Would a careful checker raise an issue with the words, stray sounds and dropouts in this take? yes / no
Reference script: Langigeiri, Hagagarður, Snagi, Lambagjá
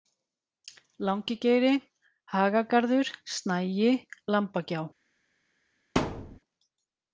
yes